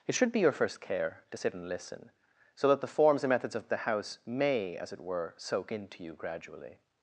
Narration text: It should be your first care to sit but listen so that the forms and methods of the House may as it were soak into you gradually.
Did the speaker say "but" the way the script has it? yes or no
no